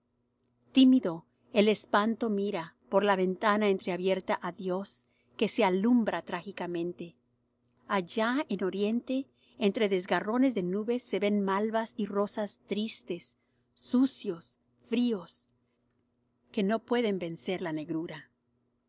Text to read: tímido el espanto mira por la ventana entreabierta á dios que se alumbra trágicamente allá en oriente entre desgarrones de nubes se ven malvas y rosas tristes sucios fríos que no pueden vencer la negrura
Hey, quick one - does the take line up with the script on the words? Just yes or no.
yes